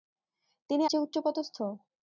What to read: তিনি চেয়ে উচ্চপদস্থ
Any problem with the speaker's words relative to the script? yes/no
no